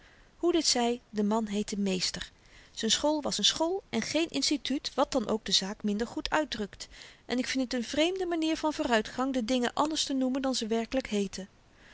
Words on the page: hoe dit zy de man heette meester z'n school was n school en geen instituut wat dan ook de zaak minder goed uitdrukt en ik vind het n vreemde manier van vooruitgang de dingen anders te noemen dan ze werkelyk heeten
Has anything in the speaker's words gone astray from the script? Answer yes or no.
no